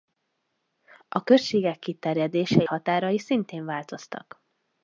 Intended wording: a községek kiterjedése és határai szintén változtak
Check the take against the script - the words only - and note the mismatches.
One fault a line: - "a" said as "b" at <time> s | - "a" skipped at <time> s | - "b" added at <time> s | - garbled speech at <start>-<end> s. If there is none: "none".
- "és" skipped at 2.6 s